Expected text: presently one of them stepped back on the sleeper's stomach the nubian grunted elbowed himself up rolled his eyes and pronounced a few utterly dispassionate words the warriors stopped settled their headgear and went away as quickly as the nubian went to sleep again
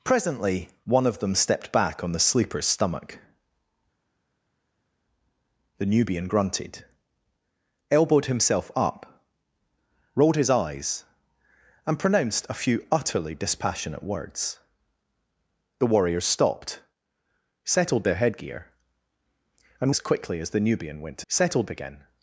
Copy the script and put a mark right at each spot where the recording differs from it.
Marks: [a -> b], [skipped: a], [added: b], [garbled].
presently one of them stepped back on the sleeper's stomach the nubian grunted elbowed himself up rolled his eyes and pronounced a few utterly dispassionate words the warriors stopped settled their headgear and [skipped: went away] as quickly as the nubian went to [sleep -> settled] again